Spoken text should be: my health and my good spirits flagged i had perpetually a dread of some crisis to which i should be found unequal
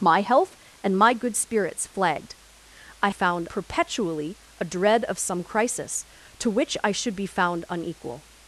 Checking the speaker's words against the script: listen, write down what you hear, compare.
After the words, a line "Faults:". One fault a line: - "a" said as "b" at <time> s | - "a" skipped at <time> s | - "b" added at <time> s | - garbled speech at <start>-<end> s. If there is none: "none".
my health and my good spirits flagged i found perpetually a dread of some crisis to which i should be found unequal
Faults:
- "had" said as "found" at 3.1 s